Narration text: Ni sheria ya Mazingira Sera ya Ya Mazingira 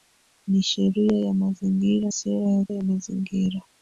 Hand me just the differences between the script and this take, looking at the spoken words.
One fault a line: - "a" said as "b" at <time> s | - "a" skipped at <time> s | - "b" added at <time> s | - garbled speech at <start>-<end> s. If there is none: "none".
none